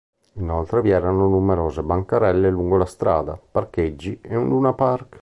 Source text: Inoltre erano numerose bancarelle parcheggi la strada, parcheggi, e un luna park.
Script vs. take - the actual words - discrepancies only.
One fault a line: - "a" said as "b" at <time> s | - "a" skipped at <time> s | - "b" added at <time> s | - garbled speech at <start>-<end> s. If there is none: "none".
- "vi" added at 0.8 s
- "parcheggi" said as "lungo" at 2.5 s